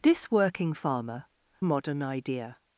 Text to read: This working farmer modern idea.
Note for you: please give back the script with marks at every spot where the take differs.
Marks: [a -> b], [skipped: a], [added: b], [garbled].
This working farmer modern idea.